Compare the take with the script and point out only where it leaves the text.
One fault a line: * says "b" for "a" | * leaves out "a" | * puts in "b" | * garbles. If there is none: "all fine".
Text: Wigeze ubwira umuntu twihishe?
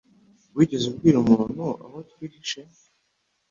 * puts in "aho"